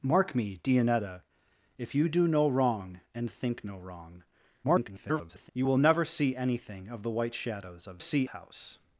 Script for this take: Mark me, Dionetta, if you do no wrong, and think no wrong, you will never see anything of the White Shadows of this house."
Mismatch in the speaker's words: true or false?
true